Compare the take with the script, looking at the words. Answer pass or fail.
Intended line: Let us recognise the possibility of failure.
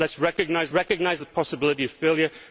fail